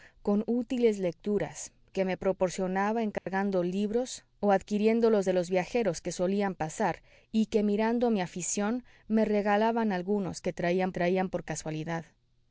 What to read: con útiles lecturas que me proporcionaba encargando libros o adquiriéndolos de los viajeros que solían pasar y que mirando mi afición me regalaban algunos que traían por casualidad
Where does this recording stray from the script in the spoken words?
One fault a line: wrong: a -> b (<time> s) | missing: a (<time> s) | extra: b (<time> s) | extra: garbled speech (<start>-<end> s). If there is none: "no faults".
extra: traían (10.9 s)